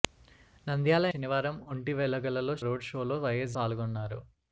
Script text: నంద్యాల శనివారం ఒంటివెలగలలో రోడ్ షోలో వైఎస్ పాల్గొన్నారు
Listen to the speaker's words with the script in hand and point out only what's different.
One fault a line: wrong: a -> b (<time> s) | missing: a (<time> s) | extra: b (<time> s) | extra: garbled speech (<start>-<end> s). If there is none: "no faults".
no faults